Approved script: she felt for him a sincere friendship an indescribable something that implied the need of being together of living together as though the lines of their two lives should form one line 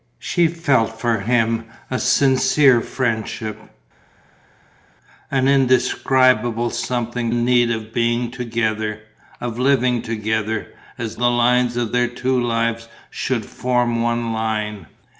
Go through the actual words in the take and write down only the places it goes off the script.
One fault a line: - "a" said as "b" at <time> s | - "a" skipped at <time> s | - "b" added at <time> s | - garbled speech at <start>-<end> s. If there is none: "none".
- "that implied the" skipped at 7.3 s
- "though" skipped at 11.2 s